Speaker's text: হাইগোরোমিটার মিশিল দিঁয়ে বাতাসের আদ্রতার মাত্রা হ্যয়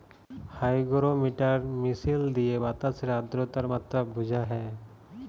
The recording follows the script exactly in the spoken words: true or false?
false